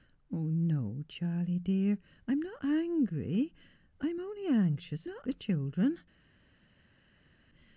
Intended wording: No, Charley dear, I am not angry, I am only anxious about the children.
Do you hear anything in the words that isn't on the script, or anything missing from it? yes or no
yes